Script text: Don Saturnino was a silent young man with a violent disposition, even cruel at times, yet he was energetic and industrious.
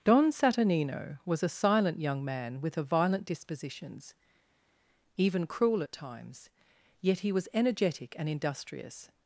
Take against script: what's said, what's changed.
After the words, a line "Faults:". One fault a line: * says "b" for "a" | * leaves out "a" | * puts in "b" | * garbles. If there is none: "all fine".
Don Saturnino was a silent young man with a violent dispositions, even cruel at times, yet he was energetic and industrious.
Faults:
* says "dispositions" for "disposition"